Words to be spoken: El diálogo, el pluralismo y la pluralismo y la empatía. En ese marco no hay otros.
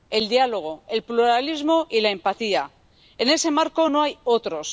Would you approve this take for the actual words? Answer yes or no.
no